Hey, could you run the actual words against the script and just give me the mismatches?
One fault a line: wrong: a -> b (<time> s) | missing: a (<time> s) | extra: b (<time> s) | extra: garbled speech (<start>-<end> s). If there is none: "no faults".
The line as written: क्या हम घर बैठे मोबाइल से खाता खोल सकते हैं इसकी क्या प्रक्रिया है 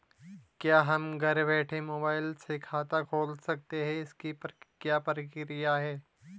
no faults